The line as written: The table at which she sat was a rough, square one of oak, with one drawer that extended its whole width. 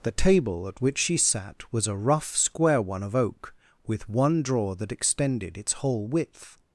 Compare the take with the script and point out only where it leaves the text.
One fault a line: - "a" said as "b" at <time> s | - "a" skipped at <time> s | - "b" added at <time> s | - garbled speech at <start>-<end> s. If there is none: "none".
none